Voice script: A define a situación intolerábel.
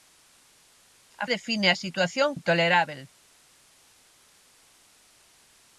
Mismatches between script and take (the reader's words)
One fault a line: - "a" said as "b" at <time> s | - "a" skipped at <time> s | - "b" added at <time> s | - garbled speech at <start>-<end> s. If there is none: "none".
none